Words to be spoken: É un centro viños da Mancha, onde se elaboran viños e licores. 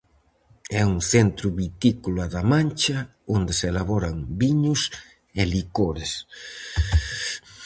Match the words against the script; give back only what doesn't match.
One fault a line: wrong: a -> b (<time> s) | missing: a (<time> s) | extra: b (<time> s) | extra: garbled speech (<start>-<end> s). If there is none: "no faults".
wrong: viños -> vitícola (1.6 s)